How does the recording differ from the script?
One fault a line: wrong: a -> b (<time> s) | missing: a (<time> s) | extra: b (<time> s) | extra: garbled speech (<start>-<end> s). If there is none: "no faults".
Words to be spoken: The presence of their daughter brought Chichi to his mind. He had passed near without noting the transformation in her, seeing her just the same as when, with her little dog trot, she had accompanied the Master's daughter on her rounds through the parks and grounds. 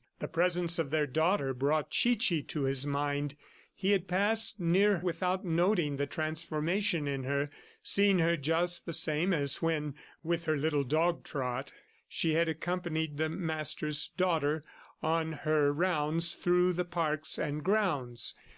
no faults